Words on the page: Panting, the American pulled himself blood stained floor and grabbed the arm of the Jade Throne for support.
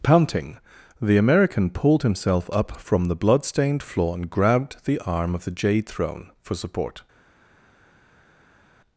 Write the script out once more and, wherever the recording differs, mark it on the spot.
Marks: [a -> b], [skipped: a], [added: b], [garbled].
Panting, the American pulled himself [added: up from the] blood stained floor and grabbed the arm of the Jade Throne for support.